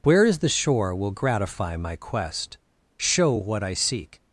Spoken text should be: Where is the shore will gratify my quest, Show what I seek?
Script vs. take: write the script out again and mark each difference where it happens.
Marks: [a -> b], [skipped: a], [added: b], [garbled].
Where is the shore will gratify my quest, Show what I seek?